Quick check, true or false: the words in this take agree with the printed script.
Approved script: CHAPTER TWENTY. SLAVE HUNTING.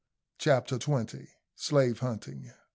true